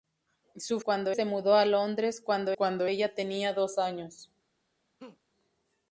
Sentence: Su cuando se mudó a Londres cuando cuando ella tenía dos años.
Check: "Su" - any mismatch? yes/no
no